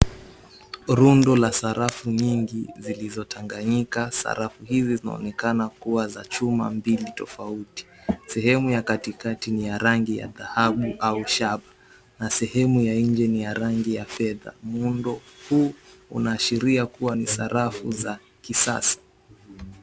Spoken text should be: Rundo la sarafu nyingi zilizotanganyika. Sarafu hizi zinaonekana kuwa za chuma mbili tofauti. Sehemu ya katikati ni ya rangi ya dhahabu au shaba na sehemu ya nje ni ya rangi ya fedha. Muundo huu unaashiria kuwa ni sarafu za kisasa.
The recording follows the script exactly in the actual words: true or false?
true